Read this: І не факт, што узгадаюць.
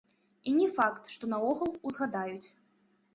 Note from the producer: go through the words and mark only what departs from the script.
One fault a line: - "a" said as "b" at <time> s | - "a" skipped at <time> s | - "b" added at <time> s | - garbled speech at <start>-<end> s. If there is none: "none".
- "наогул" added at 1.3 s